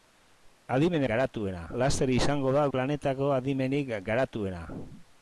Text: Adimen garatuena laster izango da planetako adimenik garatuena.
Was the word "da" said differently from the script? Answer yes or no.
no